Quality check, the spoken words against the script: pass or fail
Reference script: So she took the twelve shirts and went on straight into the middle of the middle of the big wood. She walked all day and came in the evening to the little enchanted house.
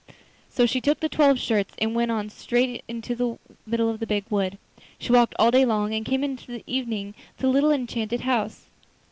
fail